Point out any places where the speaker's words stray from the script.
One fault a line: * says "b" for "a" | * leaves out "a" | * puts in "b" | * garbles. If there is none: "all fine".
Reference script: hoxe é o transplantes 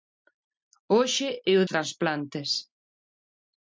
all fine